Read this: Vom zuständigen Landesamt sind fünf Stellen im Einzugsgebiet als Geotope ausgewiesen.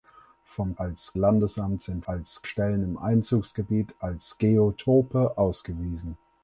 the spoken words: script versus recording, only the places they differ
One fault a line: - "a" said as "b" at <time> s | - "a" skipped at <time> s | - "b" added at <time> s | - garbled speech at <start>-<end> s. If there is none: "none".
- "zuständigen" said as "als" at 0.8 s
- "fünf" said as "als" at 2.0 s